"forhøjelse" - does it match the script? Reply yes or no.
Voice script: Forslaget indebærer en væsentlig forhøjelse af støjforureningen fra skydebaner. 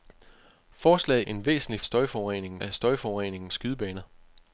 no